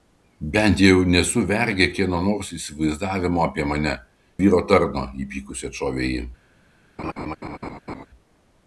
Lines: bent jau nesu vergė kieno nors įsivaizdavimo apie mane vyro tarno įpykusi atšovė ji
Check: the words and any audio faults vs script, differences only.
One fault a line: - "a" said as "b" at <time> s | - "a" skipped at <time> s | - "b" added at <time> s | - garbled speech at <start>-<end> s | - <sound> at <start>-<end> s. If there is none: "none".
- laugh at 7.0-8.1 s